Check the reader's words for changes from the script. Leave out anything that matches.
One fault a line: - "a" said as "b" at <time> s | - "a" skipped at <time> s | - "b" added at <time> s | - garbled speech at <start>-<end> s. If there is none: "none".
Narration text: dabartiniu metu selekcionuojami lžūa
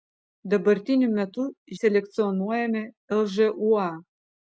none